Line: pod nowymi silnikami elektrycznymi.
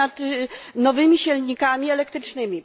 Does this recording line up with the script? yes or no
no